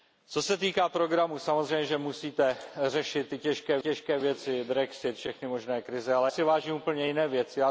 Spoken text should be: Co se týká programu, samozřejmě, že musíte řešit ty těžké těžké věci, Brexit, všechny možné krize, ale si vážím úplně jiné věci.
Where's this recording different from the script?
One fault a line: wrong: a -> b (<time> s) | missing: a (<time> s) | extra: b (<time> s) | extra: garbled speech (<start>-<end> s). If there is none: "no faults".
no faults